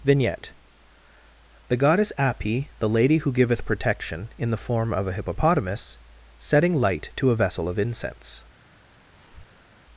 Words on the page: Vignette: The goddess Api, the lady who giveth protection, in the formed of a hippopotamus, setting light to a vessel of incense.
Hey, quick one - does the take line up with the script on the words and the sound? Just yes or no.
no